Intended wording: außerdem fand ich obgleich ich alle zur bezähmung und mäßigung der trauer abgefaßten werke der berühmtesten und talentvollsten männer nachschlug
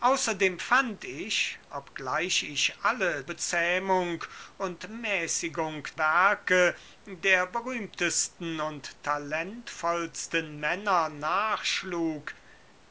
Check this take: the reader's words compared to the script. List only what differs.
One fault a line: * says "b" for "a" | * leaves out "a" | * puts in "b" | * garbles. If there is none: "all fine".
* leaves out "zur"
* leaves out "der trauer abgefaßten"